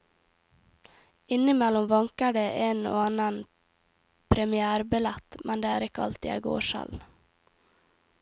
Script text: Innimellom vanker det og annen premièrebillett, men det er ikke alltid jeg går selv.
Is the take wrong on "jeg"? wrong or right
right